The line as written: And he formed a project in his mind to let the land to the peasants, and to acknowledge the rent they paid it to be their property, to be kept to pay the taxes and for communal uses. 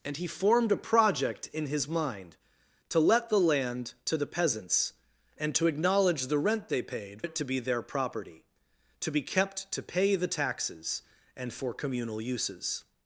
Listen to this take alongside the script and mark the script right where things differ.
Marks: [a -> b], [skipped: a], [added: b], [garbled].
And he formed a project in his mind to let the land to the peasants, and to acknowledge the rent they paid it to be their property, to be kept to pay the taxes and for communal uses.